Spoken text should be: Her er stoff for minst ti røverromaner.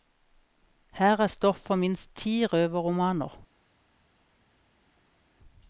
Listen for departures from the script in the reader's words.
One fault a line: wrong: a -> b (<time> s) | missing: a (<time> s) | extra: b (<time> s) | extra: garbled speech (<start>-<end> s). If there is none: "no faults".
no faults